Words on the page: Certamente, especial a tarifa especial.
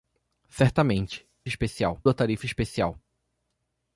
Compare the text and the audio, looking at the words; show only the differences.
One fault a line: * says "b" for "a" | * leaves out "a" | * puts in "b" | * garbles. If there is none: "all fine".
all fine